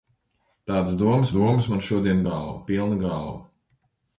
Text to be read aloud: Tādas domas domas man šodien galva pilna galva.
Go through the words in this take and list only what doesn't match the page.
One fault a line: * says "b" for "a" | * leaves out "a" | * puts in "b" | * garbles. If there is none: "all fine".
all fine